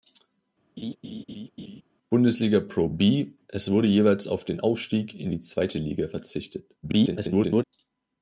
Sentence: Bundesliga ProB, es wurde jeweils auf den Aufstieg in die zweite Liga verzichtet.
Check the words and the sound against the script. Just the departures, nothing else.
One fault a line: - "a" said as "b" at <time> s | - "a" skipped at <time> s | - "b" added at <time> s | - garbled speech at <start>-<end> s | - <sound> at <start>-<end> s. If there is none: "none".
- laugh at 0.8-1.8 s
- garbled speech at 6.8-7.6 s